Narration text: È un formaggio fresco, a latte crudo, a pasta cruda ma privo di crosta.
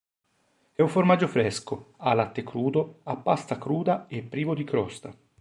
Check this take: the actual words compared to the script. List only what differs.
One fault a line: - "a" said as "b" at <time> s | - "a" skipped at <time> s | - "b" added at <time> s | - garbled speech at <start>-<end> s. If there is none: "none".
- "ma" said as "e" at 4.1 s